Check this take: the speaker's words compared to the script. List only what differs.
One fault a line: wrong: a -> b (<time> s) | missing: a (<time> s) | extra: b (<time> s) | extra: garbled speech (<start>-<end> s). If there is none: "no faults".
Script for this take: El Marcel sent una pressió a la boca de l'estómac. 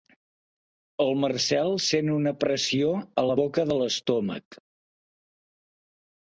no faults